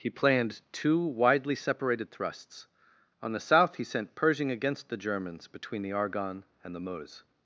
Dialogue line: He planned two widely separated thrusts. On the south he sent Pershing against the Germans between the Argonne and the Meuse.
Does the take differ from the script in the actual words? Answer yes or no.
no